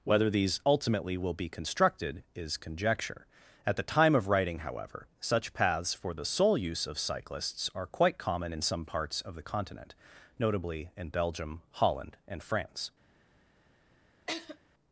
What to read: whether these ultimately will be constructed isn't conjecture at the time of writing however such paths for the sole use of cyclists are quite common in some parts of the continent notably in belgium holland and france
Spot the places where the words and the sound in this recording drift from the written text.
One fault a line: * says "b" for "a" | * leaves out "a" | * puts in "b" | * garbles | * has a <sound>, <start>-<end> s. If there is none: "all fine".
* says "is" for "isn't"
* has a laugh, 14.3-14.6 s